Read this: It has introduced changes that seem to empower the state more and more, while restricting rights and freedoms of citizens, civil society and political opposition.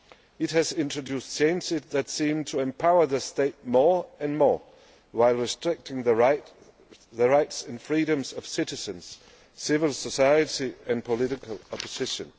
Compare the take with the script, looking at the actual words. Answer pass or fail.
fail